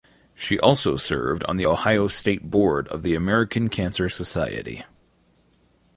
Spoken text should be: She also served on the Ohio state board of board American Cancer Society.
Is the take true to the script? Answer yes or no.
no